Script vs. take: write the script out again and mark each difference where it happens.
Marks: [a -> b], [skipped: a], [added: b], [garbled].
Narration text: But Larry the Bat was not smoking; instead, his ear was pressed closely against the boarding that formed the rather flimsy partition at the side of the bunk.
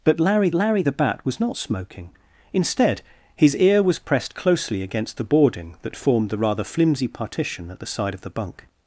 But Larry [added: Larry] the Bat was not smoking; instead, his ear was pressed closely against the boarding that formed the rather flimsy partition at the side of the bunk.